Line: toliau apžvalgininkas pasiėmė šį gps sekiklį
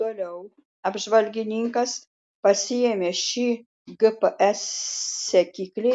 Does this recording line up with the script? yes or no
yes